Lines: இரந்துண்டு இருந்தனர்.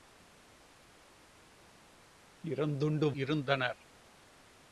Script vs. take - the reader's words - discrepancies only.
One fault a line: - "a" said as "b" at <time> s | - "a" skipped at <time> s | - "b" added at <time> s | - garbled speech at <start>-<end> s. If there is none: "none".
none